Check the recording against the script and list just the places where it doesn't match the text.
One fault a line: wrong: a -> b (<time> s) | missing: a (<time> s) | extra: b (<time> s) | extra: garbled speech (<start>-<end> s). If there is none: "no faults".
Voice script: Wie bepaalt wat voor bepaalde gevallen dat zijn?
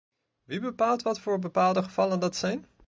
no faults